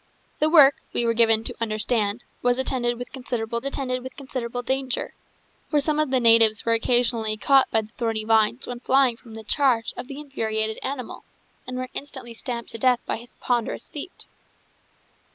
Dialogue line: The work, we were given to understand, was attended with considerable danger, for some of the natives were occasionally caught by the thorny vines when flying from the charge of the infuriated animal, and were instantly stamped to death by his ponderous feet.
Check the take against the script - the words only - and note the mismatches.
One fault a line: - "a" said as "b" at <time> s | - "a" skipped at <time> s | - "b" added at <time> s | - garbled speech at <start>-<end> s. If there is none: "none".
- "attended with considerable" added at 3.6 s